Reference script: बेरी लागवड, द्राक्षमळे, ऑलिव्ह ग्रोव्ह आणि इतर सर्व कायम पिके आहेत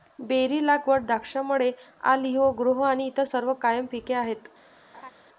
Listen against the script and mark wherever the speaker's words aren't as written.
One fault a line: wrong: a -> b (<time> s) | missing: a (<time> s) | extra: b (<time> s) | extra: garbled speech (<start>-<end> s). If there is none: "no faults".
no faults